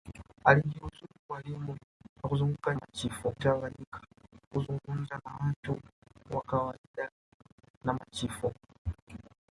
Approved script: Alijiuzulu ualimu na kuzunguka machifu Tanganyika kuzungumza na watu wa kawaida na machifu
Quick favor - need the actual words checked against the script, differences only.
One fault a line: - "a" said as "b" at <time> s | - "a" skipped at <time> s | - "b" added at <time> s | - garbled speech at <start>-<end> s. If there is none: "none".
none